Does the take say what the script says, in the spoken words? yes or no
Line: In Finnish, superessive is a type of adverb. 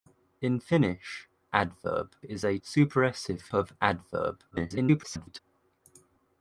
no